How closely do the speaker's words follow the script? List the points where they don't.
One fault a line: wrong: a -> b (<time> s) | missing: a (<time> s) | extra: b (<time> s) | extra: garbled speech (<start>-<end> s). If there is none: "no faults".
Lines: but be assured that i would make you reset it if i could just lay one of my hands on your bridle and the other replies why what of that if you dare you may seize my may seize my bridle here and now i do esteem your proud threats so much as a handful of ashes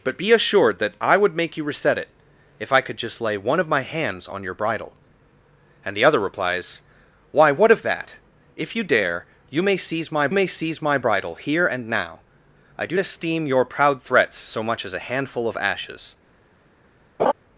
no faults